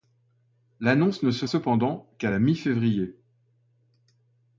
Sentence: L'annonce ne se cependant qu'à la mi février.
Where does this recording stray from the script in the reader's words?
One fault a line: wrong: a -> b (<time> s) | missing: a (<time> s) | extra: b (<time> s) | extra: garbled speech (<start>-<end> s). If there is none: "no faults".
no faults